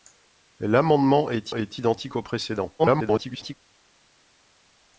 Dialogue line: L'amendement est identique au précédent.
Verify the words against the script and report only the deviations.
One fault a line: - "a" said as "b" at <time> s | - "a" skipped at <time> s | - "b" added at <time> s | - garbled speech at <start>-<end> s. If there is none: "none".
- "est" added at 1.5 s
- garbled speech at 2.8-3.5 s